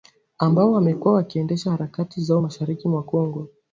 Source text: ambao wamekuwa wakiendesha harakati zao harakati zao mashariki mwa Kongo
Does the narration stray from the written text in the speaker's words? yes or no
yes